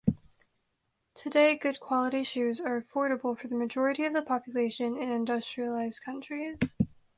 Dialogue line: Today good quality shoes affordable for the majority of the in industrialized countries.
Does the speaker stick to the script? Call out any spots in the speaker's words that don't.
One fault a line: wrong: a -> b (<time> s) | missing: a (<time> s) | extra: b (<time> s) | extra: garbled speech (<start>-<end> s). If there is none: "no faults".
extra: are (2.6 s)
extra: population (4.2 s)